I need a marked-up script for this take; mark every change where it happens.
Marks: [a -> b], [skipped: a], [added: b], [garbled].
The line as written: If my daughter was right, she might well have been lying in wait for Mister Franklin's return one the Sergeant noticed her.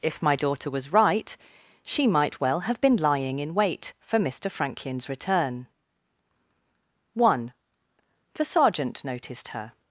If my daughter was right, she might well have been lying in wait for Mister Franklin's return one the Sergeant noticed her.